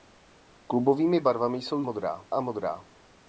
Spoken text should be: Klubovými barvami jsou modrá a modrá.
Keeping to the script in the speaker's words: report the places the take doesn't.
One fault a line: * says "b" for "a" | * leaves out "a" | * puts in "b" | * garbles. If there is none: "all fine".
all fine